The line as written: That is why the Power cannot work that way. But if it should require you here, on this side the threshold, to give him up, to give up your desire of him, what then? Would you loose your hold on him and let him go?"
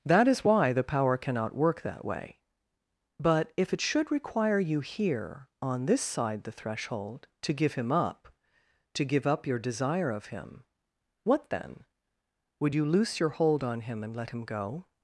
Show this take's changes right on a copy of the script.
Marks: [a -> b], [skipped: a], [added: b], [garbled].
That is why the Power cannot work that way. But if it should require you here, on this side the threshold, to give him up, to give up your desire of him, what then? Would you loose your hold on him and let him go?"